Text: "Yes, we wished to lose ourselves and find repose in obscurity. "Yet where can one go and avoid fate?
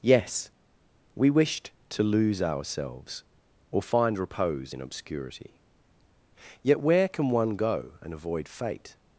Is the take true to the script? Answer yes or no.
no